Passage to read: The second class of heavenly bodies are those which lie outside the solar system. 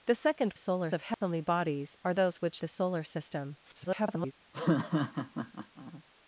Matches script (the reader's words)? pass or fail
fail